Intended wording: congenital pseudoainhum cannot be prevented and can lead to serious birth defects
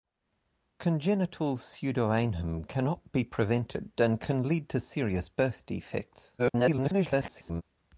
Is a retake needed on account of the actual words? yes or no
yes